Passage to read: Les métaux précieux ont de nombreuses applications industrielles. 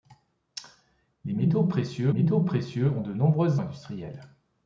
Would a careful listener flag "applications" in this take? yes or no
yes